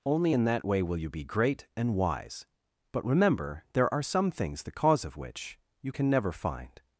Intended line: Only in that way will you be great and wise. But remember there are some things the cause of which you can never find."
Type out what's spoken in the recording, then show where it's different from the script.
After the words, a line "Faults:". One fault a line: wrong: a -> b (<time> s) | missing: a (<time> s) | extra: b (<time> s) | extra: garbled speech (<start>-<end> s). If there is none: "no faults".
Only in that way will you be great and wise. But remember there are some things the cause of which you can never find."
Faults:
no faults